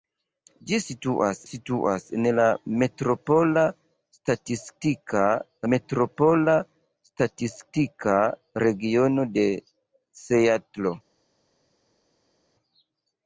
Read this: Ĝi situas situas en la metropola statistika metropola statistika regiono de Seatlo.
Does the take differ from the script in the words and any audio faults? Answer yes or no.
no